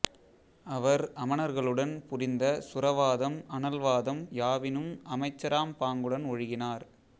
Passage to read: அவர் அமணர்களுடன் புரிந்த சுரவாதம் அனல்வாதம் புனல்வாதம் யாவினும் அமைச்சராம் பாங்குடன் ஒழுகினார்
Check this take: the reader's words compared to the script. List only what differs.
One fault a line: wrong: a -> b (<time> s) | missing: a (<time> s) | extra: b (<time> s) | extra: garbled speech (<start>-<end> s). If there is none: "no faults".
missing: புனல்வாதம் (4.2 s)